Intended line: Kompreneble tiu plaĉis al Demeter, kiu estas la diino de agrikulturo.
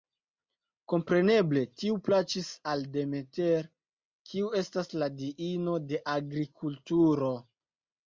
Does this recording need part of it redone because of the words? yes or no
no